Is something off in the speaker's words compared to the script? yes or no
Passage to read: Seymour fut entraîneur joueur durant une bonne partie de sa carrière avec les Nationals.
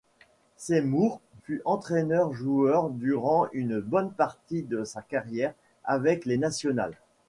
no